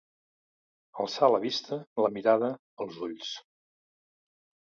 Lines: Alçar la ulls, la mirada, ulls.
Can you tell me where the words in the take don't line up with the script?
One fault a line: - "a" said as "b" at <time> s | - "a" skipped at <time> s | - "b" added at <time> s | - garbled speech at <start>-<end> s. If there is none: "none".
- "ulls" said as "vista" at 1.4 s
- "els" added at 2.9 s